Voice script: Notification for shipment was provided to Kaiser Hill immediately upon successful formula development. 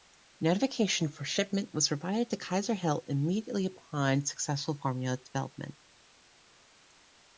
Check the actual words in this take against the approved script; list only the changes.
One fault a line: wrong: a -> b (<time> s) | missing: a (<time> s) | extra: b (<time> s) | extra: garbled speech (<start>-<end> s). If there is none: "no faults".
no faults